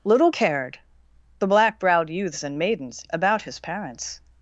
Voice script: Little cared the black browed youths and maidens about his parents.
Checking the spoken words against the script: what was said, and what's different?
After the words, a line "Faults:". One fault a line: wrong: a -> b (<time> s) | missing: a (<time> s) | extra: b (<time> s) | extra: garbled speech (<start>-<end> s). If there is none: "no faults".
Little cared the black browed youths and maidens about his parents.
Faults:
no faults